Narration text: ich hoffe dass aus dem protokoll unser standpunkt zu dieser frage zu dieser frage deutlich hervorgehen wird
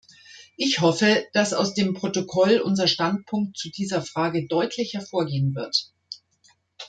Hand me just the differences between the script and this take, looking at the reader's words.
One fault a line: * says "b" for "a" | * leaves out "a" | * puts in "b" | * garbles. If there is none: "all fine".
* leaves out "zu dieser frage"